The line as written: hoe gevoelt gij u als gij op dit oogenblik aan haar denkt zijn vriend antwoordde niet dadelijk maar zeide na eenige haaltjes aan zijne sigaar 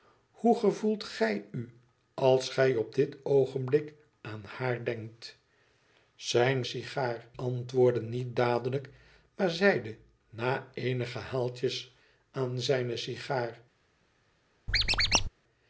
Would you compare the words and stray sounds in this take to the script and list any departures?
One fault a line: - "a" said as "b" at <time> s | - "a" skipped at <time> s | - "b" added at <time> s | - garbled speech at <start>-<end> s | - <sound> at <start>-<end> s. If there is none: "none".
- "vriend" said as "sigaar" at 6.6 s
- squeak at 14.7-15.3 s